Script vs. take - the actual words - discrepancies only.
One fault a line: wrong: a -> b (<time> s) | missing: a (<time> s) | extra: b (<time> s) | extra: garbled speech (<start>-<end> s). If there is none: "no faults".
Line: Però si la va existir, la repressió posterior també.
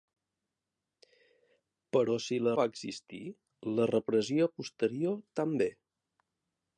no faults